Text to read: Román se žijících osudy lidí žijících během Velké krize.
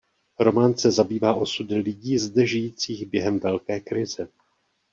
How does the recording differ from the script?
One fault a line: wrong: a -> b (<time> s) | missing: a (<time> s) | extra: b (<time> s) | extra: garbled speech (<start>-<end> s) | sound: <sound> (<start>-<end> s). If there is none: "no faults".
wrong: žijících -> zabývá (0.9 s)
extra: zde (2.1 s)